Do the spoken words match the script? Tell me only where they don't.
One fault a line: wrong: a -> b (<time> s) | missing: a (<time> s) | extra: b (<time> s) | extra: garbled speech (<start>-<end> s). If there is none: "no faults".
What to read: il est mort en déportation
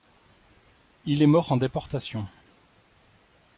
no faults